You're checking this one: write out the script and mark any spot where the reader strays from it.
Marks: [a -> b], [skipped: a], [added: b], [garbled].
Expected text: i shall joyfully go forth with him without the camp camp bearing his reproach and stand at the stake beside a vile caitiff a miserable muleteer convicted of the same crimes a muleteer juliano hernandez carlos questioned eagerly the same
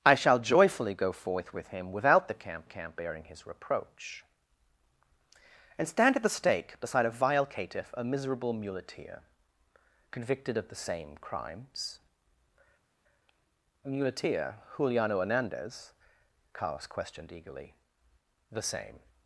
i shall joyfully go forth with him without the camp camp bearing his reproach and stand at the stake beside a vile caitiff a miserable muleteer convicted of the same crimes a muleteer juliano hernandez carlos questioned eagerly the same